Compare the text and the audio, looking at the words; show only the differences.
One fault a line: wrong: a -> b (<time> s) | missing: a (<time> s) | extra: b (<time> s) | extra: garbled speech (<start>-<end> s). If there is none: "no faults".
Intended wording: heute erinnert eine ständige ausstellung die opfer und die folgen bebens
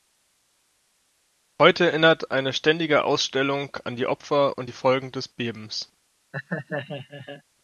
extra: an (3.8 s)
extra: des (5.1 s)